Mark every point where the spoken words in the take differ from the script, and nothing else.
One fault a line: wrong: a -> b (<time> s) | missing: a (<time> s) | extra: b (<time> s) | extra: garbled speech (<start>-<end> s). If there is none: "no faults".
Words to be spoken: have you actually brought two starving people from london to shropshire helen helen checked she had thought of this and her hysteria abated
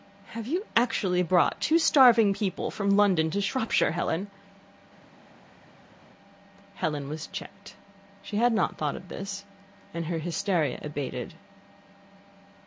extra: was (7.1 s)
extra: not (8.5 s)